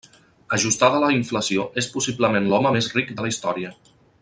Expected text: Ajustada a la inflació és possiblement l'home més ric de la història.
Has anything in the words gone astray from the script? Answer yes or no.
no